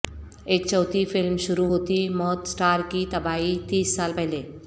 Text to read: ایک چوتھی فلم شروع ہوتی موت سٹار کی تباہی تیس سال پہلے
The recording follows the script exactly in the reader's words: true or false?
true